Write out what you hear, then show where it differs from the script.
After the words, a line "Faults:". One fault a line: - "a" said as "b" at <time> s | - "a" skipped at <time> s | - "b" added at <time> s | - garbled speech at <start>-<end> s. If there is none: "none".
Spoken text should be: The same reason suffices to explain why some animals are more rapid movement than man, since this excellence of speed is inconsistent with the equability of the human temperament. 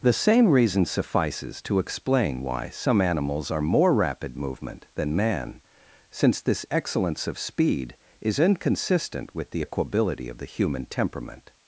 The same reason suffices to explain why some animals are more rapid movement than man, since this excellence of speed is inconsistent with the equability of the human temperament.
Faults:
none